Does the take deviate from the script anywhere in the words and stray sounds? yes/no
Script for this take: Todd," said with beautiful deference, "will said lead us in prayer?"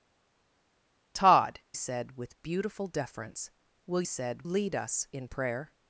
no